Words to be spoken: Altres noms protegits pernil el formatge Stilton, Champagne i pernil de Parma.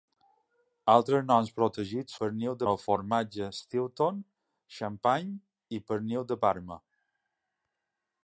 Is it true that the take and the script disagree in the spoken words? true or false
false